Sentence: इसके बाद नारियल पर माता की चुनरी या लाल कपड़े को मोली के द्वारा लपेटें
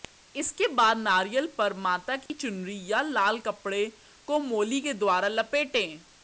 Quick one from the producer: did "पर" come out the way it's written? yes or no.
yes